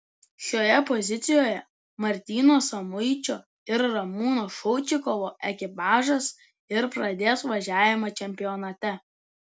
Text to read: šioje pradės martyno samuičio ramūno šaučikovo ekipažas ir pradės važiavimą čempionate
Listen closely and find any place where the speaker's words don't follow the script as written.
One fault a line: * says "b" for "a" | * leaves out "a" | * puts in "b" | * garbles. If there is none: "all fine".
* says "pozicijoje" for "pradės"
* puts in "ir"